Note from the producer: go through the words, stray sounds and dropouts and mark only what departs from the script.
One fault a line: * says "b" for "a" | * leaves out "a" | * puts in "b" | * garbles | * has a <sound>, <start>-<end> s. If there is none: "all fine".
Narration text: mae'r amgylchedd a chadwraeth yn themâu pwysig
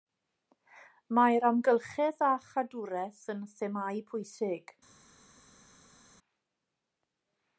all fine